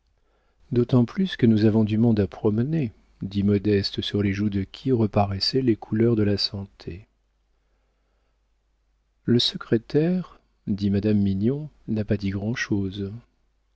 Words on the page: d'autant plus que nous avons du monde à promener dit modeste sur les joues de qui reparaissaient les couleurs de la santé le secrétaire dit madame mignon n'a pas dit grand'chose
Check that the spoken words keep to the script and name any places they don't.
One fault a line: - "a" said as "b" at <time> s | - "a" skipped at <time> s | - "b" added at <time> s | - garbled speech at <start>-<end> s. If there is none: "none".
none